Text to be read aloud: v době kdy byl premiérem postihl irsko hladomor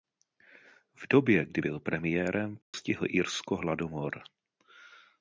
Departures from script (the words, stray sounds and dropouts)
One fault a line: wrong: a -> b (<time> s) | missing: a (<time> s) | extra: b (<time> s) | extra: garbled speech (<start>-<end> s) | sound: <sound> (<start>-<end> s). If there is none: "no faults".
sound: dropout (2.6-2.7 s)